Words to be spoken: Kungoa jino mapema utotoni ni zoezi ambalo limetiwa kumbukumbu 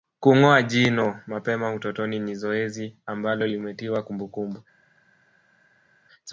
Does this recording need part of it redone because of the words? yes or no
no